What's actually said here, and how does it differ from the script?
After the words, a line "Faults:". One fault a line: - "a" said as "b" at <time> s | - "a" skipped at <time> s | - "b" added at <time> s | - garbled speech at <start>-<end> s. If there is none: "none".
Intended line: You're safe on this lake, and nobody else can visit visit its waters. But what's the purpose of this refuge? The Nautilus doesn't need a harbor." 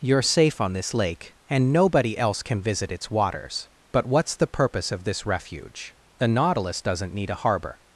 You're safe on this lake, and nobody else can visit its waters. But what's the purpose of this refuge? The Nautilus doesn't need a harbor."
Faults:
- "visit" skipped at 2.9 s